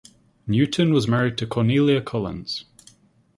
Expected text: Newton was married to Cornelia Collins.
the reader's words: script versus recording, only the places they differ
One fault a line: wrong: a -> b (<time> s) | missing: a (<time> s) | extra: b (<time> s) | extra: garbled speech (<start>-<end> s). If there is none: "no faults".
no faults